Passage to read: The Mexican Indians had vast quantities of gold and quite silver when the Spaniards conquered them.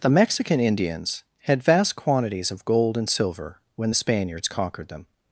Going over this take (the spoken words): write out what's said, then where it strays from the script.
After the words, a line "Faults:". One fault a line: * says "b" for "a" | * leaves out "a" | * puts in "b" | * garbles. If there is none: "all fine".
The Mexican Indians had vast quantities of gold and silver when the Spaniards conquered them.
Faults:
* leaves out "quite"